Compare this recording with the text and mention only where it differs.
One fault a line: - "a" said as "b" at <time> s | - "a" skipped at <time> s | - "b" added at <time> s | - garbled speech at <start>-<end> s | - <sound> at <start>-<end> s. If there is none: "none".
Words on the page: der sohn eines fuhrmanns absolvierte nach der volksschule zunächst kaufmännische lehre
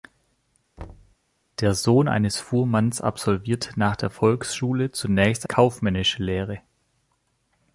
- thud at 0.8-1.2 s